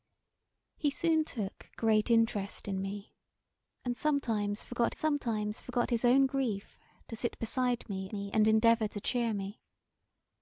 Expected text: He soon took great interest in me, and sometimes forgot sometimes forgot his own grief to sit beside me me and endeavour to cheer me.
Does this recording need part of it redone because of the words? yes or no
no